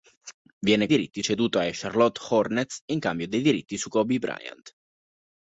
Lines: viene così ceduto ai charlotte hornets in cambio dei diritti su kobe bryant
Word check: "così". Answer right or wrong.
wrong